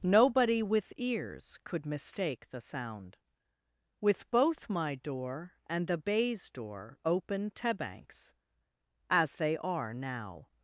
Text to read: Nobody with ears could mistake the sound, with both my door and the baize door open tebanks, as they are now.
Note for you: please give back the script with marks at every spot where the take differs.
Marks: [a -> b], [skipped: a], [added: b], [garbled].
Nobody with ears could mistake the sound, with both my door and the baize door open tebanks, as they are now.